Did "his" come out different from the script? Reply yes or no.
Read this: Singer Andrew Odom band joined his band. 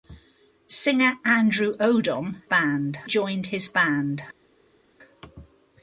no